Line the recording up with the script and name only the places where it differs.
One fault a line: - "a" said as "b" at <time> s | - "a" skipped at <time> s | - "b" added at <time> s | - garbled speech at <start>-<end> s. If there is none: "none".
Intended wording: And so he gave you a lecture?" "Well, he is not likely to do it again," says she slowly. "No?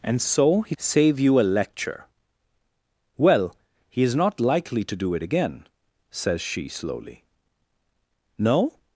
- "gave" said as "save" at 0.8 s